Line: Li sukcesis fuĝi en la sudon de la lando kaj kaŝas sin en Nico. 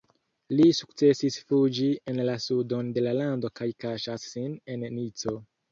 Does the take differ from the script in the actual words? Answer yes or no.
no